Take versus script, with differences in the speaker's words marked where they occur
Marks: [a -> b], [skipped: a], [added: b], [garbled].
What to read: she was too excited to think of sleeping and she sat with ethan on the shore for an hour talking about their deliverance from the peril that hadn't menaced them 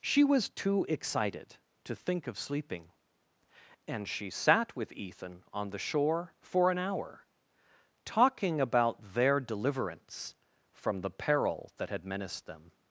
she was too excited to think of sleeping and she sat with ethan on the shore for an hour talking about their deliverance from the peril that [hadn't -> had] menaced them